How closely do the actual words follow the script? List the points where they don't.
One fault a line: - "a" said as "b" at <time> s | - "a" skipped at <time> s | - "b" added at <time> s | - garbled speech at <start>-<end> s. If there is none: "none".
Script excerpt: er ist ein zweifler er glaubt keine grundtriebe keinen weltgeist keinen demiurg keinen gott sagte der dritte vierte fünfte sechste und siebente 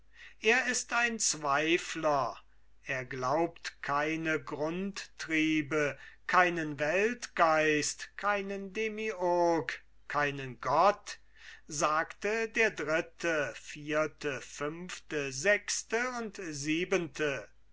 none